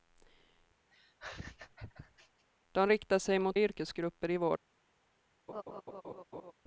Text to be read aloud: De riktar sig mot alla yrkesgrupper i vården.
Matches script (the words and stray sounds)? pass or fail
fail